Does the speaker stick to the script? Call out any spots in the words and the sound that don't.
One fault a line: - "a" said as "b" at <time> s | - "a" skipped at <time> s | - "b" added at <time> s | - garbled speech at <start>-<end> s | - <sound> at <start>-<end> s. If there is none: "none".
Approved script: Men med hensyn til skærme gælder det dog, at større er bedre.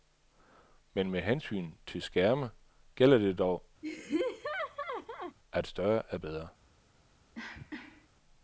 - laugh at 3.8-5.4 s
- cough at 7.3-8.1 s